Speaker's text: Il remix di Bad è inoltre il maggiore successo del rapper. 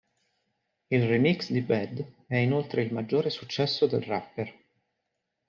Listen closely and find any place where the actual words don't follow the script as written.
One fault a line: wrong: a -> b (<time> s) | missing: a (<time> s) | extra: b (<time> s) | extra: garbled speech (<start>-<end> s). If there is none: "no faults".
no faults